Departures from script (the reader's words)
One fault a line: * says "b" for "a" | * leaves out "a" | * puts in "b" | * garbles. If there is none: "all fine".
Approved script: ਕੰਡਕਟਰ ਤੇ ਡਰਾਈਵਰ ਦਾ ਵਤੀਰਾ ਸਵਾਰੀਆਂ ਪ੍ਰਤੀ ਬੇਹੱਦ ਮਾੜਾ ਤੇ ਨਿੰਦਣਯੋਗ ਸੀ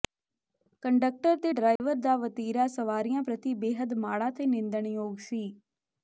all fine